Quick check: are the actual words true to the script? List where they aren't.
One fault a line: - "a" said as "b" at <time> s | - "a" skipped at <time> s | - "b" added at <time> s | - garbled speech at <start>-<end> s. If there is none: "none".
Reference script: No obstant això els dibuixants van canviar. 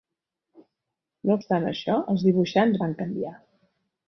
none